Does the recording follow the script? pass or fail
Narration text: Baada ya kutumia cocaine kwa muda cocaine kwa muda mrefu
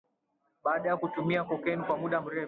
fail